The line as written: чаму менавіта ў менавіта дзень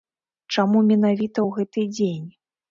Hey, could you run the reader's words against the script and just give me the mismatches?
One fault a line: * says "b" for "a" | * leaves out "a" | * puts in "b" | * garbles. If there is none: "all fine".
* says "гэты" for "менавіта"